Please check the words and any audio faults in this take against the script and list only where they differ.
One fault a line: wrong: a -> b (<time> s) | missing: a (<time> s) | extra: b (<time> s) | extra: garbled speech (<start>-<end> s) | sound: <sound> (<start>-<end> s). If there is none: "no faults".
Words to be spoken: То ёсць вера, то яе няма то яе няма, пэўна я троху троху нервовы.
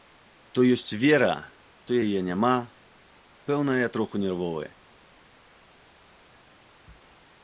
missing: то яе няма (2.5 s)
missing: троху (4.2 s)